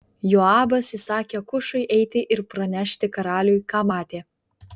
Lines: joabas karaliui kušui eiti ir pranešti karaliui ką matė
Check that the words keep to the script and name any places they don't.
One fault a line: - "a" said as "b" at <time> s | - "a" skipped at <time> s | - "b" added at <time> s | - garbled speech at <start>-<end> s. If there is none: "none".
- "karaliui" said as "įsakė" at 1.0 s